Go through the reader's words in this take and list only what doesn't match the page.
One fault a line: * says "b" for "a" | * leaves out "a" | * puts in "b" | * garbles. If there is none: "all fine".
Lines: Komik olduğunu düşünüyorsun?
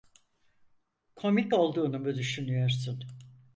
* puts in "mu"